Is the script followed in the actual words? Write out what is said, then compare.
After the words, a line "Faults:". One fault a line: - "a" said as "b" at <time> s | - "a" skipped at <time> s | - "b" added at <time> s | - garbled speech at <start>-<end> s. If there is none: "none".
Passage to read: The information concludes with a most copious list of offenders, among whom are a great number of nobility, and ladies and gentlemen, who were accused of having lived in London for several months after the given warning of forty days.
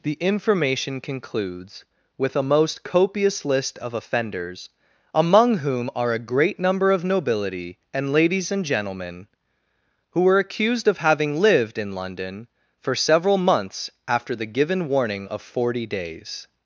The information concludes with a most copious list of offenders, among whom are a great number of nobility, and ladies and gentlemen, who were accused of having lived in London for several months after the given warning of forty days.
Faults:
none